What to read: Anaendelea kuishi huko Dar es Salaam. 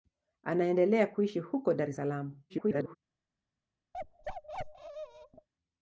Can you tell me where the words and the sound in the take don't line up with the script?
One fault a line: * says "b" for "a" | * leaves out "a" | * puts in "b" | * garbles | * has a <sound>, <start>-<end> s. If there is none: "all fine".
* garbles
* has a bark, 3.9-5.5 s